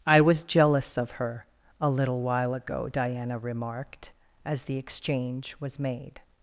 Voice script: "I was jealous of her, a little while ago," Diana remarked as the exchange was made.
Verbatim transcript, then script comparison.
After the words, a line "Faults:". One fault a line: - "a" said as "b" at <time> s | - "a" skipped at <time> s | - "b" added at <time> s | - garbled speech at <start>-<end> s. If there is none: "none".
"I was jealous of her, a little while ago," Diana remarked as the exchange was made.
Faults:
none